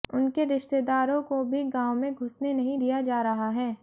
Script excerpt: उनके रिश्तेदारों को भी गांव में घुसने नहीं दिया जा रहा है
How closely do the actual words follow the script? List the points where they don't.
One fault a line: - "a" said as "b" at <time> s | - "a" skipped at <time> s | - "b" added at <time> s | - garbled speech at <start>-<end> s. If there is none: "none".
none